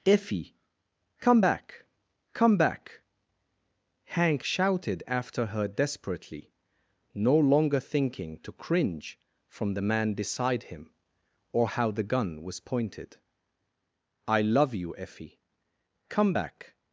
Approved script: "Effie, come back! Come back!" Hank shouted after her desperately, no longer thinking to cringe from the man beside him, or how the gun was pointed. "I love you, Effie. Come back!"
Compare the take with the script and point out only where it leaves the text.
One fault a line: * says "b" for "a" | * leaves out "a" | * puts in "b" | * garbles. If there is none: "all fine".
all fine